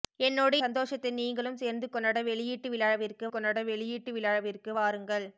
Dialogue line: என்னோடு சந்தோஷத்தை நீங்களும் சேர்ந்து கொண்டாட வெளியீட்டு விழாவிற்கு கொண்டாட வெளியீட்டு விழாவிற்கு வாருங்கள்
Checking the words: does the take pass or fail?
pass